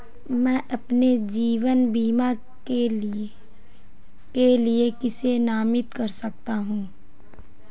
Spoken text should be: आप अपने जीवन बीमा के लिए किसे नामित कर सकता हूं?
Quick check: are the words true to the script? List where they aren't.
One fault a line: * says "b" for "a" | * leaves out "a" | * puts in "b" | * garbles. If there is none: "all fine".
* says "मैं" for "आप"